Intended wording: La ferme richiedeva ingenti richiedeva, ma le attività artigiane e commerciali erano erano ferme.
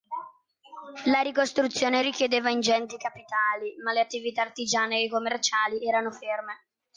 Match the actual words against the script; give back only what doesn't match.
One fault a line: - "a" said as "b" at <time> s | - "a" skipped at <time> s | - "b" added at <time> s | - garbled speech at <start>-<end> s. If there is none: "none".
- "ferme" said as "ricostruzione" at 1.2 s
- "richiedeva" said as "capitali" at 3.0 s
- "erano" skipped at 6.1 s